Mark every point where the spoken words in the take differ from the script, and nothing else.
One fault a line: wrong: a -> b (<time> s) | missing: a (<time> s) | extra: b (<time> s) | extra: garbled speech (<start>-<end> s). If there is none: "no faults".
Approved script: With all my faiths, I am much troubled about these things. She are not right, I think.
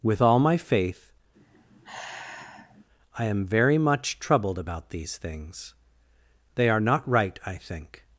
wrong: faiths -> faith (0.6 s)
extra: very (3.5 s)
wrong: She -> They (6.6 s)